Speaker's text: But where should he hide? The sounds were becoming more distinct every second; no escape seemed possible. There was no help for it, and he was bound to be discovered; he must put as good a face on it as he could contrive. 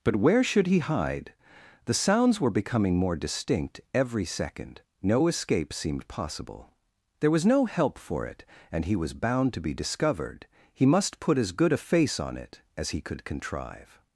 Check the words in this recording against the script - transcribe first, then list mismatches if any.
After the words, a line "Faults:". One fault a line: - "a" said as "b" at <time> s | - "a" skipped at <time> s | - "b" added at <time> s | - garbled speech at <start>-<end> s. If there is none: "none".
But where should he hide? The sounds were becoming more distinct every second; no escape seemed possible. There was no help for it, and he was bound to be discovered; he must put as good a face on it as he could contrive.
Faults:
none